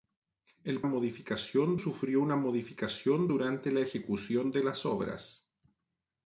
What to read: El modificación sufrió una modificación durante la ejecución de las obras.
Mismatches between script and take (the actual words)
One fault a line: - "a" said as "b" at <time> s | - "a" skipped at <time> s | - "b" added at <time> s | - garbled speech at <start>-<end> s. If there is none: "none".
none